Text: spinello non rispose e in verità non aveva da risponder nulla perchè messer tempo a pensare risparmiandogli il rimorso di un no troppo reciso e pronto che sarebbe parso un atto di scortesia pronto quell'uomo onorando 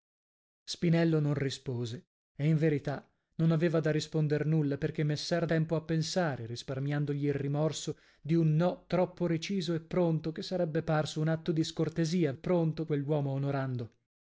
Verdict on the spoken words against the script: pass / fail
pass